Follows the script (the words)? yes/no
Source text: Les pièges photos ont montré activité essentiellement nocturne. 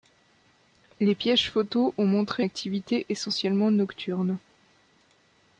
yes